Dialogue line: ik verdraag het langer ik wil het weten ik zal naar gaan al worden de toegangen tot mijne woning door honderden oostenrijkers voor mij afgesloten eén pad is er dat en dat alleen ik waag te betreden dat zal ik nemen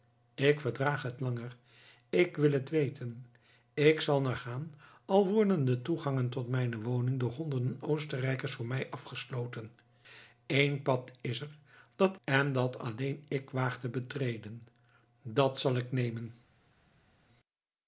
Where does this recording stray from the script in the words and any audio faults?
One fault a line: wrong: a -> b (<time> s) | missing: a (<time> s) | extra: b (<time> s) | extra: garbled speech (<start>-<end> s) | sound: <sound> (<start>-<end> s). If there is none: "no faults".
no faults